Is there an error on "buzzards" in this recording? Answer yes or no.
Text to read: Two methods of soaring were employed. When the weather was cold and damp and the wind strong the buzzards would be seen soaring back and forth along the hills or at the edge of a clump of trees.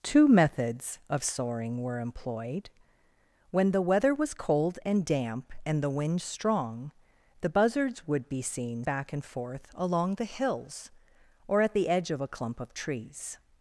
no